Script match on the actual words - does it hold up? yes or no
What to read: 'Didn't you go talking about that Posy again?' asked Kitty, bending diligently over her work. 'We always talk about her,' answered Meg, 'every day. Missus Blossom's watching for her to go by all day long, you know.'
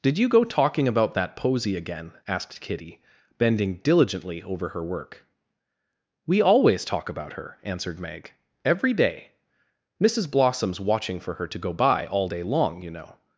no